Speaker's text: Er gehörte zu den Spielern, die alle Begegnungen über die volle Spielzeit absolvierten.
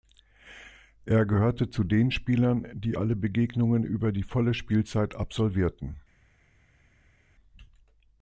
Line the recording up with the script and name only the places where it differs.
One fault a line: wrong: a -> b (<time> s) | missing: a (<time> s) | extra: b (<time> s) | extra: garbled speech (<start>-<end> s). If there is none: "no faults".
no faults